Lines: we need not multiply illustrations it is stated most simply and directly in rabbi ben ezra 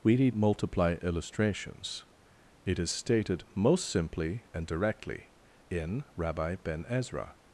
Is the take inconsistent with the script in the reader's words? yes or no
yes